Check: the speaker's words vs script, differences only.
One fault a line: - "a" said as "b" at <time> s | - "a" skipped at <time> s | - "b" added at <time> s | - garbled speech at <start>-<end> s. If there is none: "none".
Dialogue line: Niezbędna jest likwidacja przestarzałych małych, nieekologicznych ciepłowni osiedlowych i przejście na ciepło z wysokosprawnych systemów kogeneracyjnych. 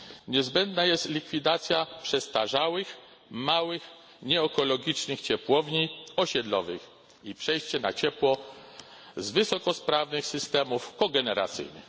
none